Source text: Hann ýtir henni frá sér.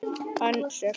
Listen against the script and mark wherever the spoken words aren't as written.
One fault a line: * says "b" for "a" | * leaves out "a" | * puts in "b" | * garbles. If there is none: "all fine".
* leaves out "ýtir henni frá"